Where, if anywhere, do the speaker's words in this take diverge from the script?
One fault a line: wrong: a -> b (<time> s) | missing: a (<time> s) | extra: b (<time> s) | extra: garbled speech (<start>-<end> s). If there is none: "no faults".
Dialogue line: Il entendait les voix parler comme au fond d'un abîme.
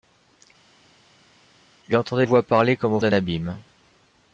missing: les (2.2 s)
missing: fond (3.0 s)